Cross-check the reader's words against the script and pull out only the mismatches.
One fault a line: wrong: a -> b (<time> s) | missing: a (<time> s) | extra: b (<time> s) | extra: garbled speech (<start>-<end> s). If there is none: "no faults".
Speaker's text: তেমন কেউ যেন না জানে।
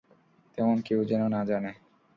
no faults